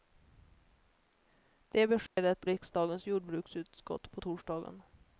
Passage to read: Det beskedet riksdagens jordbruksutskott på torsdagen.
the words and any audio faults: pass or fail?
fail